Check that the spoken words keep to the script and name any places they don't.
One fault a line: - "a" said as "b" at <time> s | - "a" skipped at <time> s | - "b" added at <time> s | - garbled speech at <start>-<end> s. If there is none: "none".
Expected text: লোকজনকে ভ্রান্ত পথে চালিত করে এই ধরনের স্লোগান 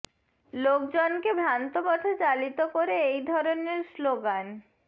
none